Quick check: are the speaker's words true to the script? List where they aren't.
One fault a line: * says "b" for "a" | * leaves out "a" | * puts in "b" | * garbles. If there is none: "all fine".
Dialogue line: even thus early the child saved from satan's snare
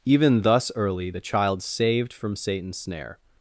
all fine